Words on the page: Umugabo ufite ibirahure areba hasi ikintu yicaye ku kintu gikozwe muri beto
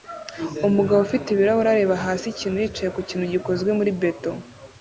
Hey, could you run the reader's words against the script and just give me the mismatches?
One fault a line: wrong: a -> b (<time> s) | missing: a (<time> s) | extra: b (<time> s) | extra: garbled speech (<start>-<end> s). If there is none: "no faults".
no faults